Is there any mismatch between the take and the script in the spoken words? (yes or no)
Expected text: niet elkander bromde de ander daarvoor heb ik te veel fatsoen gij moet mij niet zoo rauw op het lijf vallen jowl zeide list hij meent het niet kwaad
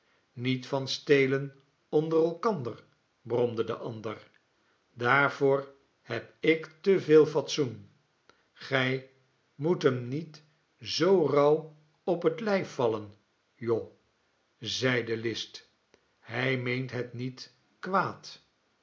yes